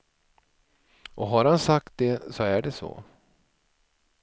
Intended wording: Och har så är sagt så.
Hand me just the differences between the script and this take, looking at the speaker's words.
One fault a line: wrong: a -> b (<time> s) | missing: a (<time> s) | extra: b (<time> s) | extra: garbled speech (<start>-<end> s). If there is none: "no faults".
extra: han sagt det (1.4 s)
wrong: sagt -> det (2.6 s)